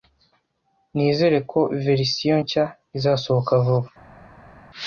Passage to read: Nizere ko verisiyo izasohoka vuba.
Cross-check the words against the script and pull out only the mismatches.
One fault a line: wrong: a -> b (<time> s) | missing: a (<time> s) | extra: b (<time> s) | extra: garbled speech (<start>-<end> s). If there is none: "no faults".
extra: nshya (2.4 s)